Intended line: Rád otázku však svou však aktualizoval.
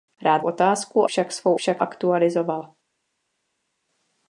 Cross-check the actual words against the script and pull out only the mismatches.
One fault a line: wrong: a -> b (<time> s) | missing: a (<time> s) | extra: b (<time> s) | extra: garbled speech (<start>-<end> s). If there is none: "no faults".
no faults